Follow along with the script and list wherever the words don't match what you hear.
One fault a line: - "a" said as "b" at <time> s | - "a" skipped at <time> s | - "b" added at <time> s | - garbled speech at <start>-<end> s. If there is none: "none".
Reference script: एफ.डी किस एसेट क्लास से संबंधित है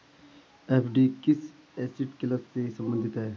none